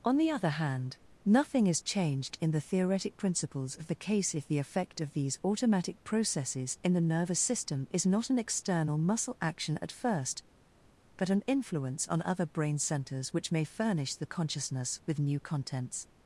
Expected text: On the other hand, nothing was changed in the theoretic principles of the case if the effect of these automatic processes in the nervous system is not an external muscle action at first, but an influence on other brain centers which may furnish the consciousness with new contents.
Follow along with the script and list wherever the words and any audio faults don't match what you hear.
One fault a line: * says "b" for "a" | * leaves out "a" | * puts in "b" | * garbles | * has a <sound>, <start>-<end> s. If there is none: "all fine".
* says "is" for "was"